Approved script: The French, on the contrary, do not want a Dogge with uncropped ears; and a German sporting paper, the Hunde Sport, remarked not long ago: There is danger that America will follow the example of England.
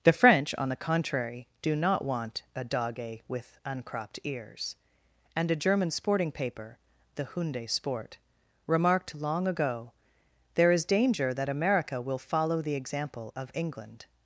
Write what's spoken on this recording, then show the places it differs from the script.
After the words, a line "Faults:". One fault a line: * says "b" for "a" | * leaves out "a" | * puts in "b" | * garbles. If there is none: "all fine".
The French, on the contrary, do not want a Dogge with uncropped ears; and a German sporting paper, the Hunde Sport, remarked long ago: There is danger that America will follow the example of England.
Faults:
* leaves out "not"